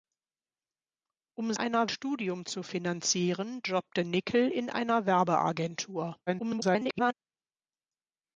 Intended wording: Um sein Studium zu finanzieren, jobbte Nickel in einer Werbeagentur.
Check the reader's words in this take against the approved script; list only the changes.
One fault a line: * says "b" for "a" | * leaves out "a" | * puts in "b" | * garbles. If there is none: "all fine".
* says "einer" for "sein"
* garbles